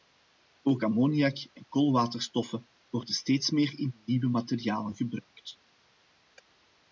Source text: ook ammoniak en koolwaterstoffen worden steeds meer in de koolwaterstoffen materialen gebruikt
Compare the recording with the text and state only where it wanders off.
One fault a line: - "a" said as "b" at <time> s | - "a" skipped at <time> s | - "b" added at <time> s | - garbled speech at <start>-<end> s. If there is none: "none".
- "koolwaterstoffen" said as "nieuwe" at 4.1 s